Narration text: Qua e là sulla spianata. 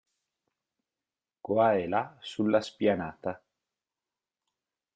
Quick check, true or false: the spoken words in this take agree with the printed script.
true